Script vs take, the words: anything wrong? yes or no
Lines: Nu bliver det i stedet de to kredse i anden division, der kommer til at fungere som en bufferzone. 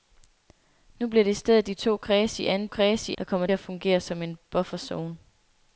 yes